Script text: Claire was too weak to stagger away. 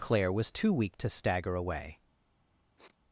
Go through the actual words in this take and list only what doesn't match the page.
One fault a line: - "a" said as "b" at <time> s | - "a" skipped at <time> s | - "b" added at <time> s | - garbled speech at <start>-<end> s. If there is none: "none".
none